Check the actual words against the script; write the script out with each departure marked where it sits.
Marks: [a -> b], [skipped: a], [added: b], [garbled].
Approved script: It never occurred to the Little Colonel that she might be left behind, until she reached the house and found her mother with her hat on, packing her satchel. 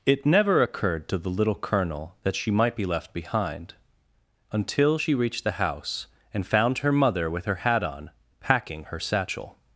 It never occurred to the Little Colonel that she might be left behind, until she reached the house and found her mother with her hat on, packing her satchel.